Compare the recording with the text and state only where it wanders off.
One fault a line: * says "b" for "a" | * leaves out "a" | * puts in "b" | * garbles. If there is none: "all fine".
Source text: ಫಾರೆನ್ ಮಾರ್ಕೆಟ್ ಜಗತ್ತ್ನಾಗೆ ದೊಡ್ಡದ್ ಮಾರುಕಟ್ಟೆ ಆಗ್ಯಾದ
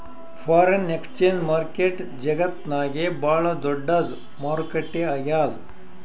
* puts in "ಎಕ್ಸ್ಚೇಂಜ್"
* puts in "ಭಾಳ್"